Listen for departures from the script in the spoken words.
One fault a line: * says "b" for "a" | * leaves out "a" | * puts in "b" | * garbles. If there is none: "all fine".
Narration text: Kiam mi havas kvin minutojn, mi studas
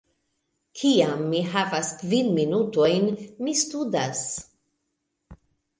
all fine